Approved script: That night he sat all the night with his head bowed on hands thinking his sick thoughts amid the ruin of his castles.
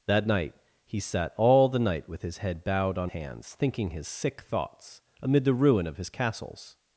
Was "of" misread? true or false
false